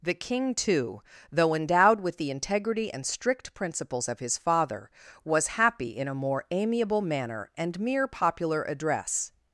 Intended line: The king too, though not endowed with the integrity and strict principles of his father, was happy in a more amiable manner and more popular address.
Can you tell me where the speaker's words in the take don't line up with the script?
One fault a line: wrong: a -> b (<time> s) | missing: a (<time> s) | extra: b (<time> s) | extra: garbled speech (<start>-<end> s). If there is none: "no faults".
missing: not (1.5 s)
wrong: more -> mere (7.8 s)